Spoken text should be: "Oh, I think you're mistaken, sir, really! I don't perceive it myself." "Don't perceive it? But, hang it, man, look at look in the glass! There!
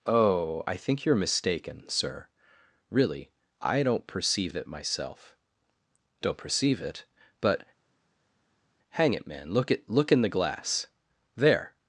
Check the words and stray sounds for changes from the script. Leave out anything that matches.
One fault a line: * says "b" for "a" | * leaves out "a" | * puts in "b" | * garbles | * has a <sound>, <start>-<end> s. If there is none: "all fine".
all fine